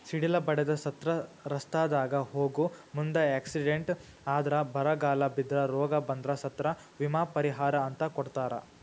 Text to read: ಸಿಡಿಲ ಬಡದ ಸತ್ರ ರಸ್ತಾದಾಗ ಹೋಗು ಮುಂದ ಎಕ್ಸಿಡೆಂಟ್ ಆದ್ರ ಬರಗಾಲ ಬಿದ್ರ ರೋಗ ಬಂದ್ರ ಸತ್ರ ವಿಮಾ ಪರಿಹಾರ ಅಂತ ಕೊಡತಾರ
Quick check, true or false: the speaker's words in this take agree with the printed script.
true